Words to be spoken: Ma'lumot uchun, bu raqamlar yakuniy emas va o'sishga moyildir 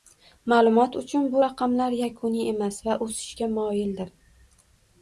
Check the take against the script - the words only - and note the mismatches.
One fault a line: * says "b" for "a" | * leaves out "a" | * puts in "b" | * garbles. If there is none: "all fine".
all fine